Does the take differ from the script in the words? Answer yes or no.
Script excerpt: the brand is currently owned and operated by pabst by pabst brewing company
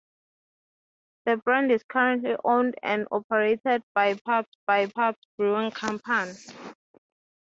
no